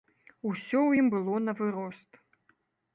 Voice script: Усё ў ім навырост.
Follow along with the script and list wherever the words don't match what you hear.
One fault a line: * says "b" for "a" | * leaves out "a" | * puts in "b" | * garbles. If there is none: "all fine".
* puts in "было"